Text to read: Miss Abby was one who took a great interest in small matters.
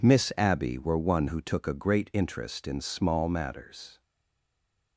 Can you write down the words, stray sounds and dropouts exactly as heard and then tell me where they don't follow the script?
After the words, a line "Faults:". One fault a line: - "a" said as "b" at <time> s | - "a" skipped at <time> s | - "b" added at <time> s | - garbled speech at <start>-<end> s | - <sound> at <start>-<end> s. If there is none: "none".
Miss Abby were one who took a great interest in small matters.
Faults:
- "was" said as "were" at 0.8 s